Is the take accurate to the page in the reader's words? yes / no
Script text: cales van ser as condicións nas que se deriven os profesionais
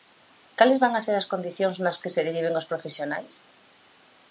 yes